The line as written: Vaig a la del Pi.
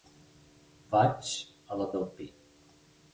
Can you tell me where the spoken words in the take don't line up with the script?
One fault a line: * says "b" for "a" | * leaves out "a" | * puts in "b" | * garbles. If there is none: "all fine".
all fine